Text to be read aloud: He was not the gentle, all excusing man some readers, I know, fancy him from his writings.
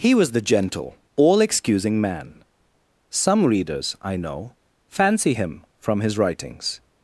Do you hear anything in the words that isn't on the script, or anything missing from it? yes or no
yes